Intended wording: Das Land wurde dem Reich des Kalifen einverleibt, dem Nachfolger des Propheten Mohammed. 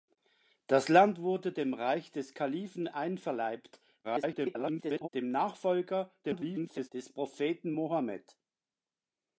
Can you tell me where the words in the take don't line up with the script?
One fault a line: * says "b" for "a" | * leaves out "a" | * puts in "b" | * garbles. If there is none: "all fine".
* garbles
* garbles